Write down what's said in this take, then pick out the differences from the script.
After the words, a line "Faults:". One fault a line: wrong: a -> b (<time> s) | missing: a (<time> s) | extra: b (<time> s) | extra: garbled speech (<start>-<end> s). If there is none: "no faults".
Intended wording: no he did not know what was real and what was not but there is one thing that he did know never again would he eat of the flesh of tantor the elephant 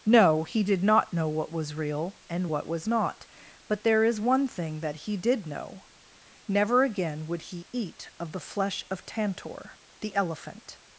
no he did not know what was real and what was not but there is one thing that he did know never again would he eat of the flesh of tantor the elephant
Faults:
no faults